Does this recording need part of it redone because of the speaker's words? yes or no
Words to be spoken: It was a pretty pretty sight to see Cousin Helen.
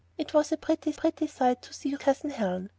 no